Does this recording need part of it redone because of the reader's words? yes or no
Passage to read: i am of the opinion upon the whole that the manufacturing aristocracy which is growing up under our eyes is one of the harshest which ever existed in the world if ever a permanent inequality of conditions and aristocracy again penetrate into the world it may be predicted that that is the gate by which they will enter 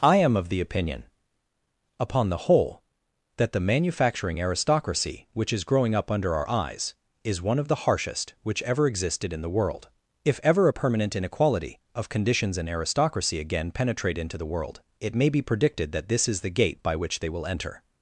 yes